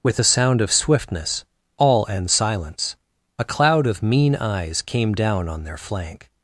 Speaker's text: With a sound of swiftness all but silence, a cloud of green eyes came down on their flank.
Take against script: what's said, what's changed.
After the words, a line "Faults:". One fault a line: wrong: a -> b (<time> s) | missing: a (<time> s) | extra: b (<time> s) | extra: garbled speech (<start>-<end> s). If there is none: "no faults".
With a sound of swiftness all and silence, a cloud of mean eyes came down on their flank.
Faults:
wrong: but -> and (2.1 s)
wrong: green -> mean (4.0 s)